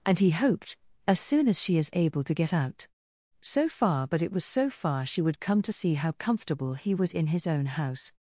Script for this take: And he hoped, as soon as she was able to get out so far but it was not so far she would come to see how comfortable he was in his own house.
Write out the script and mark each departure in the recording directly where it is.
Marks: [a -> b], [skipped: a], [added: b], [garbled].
And he hoped, as soon as she [was -> is] able to get out so far but it was [skipped: not] so far she would come to see how comfortable he was in his own house.